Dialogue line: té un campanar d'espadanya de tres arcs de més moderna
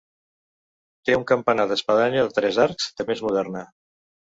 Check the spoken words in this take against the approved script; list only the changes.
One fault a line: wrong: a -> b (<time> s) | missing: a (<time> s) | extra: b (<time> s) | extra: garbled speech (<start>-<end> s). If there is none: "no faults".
no faults